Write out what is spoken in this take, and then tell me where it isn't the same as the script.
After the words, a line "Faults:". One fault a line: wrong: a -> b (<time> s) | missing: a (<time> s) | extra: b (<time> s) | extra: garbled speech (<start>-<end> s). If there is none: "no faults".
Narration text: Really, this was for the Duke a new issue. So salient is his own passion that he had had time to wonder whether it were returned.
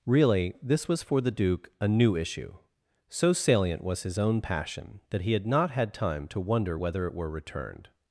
Really, this was for the Duke a new issue. So salient was his own passion that he had not had time to wonder whether it were returned.
Faults:
wrong: is -> was (3.8 s)
extra: not (5.5 s)